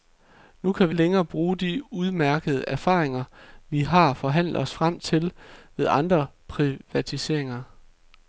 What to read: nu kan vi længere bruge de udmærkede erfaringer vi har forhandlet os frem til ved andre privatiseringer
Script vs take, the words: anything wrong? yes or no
no